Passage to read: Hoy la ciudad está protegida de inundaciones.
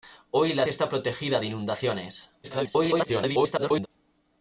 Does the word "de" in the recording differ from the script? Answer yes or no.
no